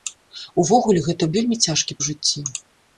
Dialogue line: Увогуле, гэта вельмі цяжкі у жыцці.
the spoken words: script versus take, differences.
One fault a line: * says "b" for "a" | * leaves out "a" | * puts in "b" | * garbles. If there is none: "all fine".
all fine